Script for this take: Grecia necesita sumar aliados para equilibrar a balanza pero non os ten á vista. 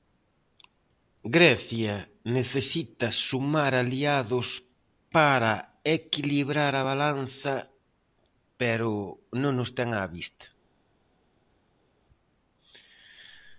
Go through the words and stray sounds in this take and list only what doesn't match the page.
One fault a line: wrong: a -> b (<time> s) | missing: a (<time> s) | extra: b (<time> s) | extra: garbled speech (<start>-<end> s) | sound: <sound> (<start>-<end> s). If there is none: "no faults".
no faults